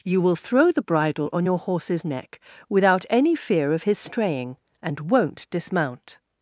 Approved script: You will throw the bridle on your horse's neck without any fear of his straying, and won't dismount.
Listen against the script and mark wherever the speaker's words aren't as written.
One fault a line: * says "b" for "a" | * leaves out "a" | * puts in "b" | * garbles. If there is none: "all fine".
all fine